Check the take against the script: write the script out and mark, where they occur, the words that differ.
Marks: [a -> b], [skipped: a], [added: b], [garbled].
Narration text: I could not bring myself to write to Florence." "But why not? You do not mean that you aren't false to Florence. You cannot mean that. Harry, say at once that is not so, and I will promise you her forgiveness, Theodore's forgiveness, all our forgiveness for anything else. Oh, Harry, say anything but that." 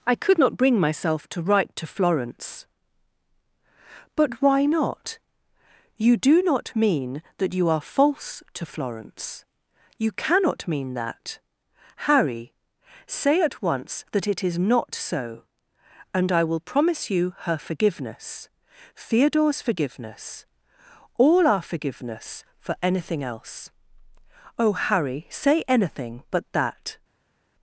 I could not bring myself to write to Florence." "But why not? You do not mean that you [aren't -> are] false to Florence. You cannot mean that. Harry, say at once that [added: it] is not so, and I will promise you her forgiveness, Theodore's forgiveness, all our forgiveness for anything else. Oh, Harry, say anything but that."